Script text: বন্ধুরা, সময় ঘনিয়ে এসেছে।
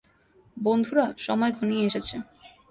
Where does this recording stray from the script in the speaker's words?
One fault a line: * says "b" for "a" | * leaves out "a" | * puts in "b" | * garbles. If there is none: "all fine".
all fine